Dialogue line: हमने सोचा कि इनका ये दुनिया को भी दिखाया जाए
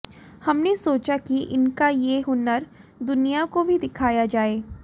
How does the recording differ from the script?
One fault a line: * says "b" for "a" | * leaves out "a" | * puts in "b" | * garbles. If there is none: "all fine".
* puts in "हुनर"